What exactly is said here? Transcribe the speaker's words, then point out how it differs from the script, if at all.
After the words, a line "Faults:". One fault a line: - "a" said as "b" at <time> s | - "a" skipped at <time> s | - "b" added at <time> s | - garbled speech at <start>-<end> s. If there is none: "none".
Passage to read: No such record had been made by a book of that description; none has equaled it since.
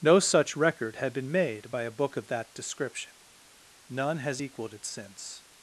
No such record had been made by a book of that description; none has equaled it since.
Faults:
none